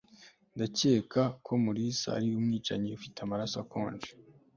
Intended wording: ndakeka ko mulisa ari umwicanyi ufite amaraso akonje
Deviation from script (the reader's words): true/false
false